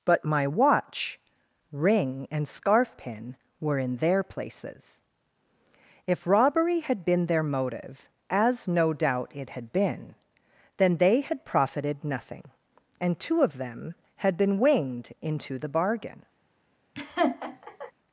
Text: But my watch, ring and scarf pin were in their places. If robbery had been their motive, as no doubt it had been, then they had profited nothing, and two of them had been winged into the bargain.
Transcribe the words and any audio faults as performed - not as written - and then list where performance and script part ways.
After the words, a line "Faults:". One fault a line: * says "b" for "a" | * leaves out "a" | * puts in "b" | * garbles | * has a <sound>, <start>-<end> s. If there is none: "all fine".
But my watch, ring and scarf pin were in their places. If robbery had been their motive, as no doubt it had been, then they had profited nothing, and two of them had been winged into the bargain.
Faults:
* has a laugh, 16.9-17.9 s